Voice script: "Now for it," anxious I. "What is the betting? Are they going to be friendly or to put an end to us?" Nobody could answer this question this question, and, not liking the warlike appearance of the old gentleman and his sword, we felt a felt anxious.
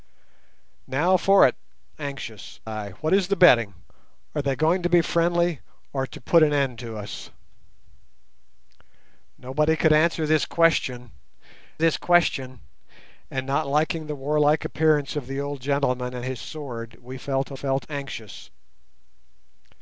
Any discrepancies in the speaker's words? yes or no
no